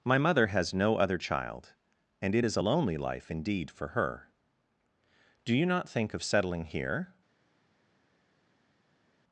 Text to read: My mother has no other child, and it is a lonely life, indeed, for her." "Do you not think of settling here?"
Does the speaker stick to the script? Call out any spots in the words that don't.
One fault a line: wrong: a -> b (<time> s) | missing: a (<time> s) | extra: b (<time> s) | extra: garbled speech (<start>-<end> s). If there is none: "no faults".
no faults